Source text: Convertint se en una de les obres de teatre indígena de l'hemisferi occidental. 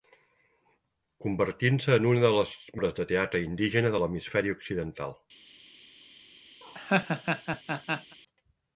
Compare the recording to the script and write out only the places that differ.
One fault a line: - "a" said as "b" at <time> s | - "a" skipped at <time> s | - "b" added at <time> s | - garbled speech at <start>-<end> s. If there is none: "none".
none